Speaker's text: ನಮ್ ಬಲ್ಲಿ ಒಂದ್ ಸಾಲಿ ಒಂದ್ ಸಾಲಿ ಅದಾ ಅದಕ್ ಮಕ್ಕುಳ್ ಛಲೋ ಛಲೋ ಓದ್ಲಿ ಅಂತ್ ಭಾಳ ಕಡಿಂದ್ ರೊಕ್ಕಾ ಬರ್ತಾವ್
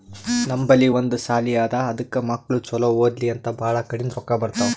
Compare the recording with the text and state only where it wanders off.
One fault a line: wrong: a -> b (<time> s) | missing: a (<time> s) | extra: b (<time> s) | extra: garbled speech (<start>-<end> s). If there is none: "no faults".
missing: ಒಂದ್ ಸಾಲಿ (1.5 s)
missing: ಛಲೋ (2.9 s)